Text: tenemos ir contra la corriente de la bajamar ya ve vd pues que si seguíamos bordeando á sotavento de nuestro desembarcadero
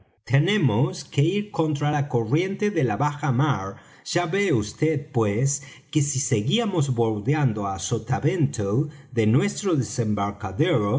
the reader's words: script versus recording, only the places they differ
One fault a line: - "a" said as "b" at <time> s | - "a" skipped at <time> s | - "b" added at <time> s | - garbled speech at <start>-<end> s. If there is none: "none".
- "que" added at 1.0 s